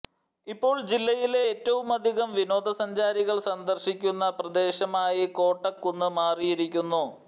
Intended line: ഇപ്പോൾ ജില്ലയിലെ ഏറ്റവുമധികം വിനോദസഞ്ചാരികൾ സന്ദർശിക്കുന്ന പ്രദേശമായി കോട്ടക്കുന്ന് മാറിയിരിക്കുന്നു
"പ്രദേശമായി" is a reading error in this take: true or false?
false